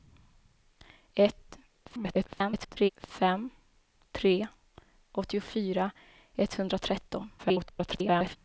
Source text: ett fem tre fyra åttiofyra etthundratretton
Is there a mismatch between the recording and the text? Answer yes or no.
yes